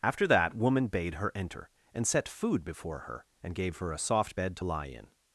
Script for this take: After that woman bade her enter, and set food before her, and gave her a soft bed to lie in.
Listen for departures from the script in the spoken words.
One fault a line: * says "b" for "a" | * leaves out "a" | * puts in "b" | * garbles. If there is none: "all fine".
all fine